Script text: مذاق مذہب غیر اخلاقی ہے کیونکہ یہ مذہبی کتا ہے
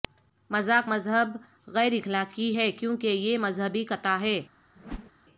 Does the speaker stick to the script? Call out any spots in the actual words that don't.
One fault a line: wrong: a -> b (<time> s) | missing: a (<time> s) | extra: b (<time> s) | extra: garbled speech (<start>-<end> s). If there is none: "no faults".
no faults